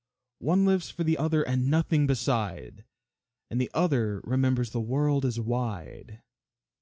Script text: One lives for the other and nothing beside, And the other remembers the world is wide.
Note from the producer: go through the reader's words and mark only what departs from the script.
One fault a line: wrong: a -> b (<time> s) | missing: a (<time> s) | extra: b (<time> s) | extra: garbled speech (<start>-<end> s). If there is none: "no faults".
no faults